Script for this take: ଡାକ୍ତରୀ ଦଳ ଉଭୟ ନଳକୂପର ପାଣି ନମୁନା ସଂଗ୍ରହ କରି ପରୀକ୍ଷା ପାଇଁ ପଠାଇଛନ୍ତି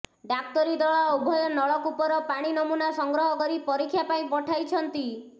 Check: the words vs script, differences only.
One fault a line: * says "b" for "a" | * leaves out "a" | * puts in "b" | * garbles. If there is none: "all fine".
all fine